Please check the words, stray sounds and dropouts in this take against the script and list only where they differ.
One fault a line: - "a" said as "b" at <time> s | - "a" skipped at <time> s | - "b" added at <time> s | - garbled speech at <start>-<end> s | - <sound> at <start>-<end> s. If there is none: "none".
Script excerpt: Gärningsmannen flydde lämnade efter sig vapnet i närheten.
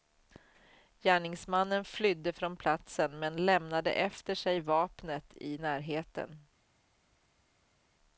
- "från platsen men" added at 2.3 s